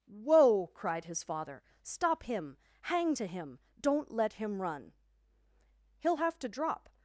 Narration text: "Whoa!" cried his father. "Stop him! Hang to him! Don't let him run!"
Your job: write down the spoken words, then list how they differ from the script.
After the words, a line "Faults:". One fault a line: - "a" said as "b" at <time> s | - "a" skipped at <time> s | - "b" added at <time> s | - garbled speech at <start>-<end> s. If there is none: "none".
"Whoa!" cried his father. "Stop him! Hang to him! Don't let him run!" "He'll have to drop
Faults:
- "He'll have to drop" added at 6.0 s